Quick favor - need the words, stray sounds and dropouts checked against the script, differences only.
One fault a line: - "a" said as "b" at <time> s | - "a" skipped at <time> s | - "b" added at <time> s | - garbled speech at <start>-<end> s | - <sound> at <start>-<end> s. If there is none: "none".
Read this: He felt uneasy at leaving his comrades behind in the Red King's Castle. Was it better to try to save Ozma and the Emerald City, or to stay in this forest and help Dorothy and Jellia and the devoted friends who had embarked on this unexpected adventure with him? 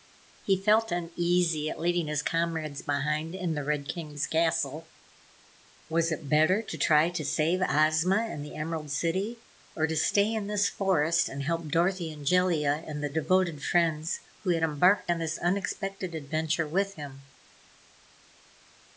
none